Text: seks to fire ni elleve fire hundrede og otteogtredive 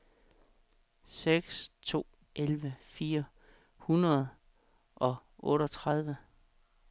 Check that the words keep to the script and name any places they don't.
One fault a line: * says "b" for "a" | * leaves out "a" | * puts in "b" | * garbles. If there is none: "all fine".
* leaves out "fire ni"